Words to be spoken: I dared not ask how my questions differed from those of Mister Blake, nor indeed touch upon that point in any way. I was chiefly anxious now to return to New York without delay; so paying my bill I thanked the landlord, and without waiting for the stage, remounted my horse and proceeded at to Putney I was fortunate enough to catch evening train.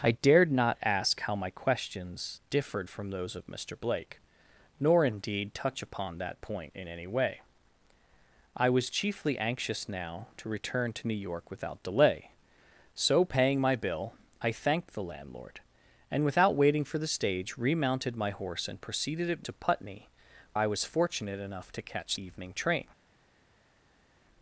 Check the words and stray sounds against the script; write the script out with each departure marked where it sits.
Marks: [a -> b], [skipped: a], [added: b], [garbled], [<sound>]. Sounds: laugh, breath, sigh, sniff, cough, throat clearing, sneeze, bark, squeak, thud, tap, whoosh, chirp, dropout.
I dared not ask how my questions differed from those of Mister Blake, nor indeed touch upon that point in any way. I was chiefly anxious now to return to New York without delay; so paying my bill I thanked the landlord, and without waiting for the stage, remounted my horse and proceeded at to Putney I was fortunate enough to catch evening train.